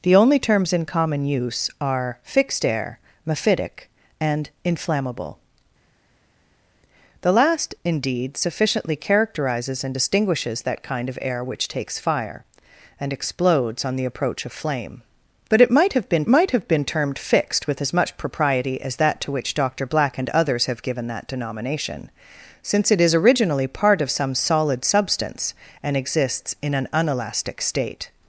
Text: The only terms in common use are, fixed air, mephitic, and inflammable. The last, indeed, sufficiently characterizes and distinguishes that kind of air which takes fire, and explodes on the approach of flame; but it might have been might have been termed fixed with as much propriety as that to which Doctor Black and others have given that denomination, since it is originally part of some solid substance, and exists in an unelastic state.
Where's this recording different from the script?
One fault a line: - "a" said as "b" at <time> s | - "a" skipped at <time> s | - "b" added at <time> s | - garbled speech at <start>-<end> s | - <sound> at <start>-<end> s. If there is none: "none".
none